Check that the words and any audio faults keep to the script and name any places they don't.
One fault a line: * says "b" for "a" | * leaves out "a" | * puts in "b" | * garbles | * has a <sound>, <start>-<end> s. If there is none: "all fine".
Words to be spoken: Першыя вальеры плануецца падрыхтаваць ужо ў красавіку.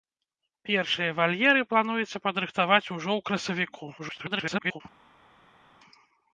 * garbles